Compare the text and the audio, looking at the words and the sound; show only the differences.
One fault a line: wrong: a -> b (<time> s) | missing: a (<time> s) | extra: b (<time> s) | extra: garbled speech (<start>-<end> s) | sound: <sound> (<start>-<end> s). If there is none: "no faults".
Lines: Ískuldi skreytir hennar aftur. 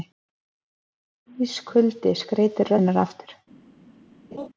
sound: laugh (4.3-4.5 s)